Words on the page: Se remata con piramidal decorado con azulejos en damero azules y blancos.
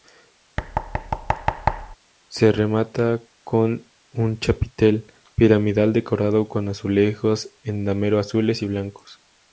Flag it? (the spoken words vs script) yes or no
yes